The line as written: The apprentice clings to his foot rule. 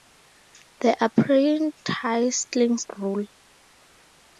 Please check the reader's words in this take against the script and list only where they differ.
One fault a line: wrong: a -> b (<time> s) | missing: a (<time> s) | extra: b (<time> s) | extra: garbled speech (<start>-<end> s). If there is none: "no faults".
missing: to his foot (2.9 s)